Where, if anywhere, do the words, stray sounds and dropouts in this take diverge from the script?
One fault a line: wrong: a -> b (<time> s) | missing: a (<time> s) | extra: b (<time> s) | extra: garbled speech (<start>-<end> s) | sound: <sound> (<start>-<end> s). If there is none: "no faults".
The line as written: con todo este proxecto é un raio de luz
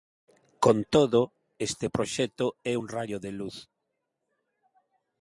no faults